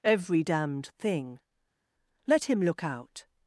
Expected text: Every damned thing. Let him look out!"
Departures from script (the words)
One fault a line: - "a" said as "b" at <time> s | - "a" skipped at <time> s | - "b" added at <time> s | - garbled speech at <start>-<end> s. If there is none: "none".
none